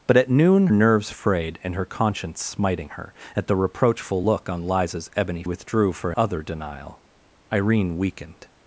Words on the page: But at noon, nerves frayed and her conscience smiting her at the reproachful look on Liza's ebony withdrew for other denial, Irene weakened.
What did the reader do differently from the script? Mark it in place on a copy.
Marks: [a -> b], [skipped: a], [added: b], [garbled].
But at noon, nerves frayed and her conscience smiting her at the reproachful look on Liza's ebony withdrew for other denial, Irene weakened.